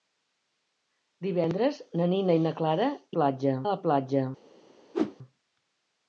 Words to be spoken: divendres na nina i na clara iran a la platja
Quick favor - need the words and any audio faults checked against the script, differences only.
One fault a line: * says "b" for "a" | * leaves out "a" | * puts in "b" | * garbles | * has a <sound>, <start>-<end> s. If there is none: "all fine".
* says "platja" for "iran"
* has a whoosh, 4.9-5.2 s